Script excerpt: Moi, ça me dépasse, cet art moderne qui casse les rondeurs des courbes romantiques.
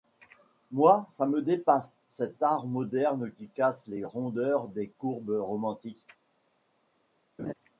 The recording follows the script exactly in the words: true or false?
true